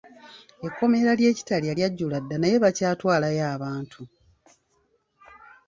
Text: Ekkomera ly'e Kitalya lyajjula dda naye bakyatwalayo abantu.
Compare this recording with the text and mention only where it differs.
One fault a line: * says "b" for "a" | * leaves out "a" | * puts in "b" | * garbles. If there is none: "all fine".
all fine